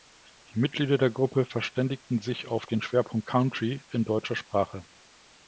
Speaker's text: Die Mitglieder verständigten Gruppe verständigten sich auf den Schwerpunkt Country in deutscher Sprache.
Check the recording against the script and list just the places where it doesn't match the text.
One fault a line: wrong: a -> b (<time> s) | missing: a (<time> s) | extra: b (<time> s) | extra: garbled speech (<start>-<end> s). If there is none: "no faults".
wrong: verständigten -> der (1.0 s)